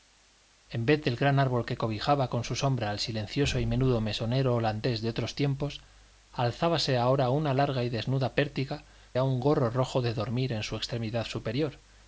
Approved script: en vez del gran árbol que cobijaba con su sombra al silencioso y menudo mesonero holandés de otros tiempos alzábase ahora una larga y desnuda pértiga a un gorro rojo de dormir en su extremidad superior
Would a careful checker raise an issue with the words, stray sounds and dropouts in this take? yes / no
no